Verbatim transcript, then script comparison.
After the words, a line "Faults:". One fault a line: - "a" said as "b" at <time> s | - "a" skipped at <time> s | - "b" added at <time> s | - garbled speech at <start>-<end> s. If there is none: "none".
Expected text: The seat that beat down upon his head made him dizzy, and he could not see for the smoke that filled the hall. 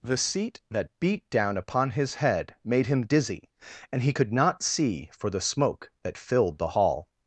The seat that beat down upon his head made him dizzy, and he could not see for the smoke that filled the hall.
Faults:
none